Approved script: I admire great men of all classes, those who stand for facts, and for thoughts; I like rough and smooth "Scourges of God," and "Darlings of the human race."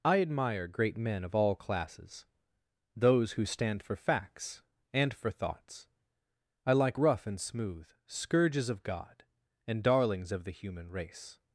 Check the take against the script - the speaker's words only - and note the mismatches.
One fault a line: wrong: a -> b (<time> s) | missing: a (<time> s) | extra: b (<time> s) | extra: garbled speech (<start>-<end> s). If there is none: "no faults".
no faults